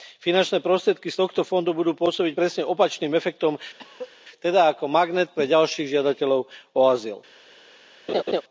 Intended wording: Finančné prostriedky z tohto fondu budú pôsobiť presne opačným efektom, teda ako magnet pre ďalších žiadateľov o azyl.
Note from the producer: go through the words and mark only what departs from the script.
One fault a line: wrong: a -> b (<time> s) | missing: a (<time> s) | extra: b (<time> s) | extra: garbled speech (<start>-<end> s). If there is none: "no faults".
no faults